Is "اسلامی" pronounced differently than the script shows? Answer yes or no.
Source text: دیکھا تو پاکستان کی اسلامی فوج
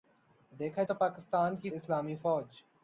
no